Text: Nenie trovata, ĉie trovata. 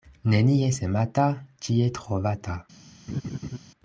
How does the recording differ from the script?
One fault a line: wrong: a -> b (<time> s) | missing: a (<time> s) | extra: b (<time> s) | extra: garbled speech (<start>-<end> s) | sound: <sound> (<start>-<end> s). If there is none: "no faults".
wrong: trovata -> semata (0.7 s)
sound: laugh (3.1-3.6 s)